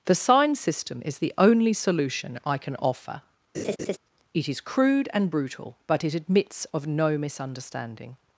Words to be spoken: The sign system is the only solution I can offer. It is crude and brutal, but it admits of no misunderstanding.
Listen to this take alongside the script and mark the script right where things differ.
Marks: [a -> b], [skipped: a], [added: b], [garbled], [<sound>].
The sign system is the only solution I can offer. [laugh] It is crude and brutal, but it admits of no misunderstanding.